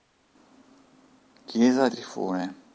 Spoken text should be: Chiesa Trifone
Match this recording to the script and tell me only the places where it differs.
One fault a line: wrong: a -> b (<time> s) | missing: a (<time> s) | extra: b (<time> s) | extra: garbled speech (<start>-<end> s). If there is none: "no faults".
no faults